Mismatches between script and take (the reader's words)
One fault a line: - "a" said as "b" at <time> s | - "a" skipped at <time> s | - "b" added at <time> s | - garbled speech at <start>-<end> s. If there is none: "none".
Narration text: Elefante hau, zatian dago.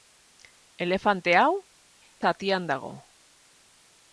none